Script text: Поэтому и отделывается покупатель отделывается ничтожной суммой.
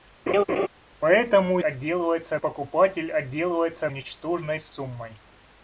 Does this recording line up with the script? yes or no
yes